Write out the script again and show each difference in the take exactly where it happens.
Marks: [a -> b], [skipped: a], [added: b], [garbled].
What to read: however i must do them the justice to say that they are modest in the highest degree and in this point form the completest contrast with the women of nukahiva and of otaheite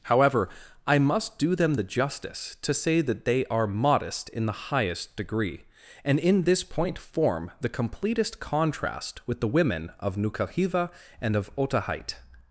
however i must do them the justice to say that they are modest in the highest degree and in this point form the completest contrast with the women of nukahiva and of otaheite